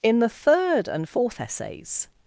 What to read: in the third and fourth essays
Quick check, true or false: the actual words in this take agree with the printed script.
true